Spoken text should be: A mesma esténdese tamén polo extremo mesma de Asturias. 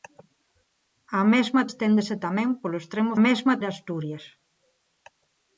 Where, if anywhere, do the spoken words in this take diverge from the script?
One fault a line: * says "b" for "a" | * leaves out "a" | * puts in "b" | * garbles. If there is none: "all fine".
all fine